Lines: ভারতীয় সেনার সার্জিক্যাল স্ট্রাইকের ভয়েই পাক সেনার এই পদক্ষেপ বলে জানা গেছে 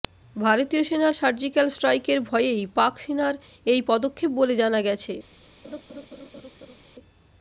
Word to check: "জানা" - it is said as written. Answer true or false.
true